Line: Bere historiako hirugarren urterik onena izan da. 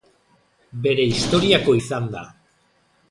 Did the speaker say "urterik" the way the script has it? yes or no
no